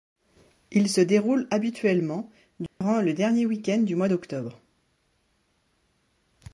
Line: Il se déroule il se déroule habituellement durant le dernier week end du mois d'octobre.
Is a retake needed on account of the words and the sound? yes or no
yes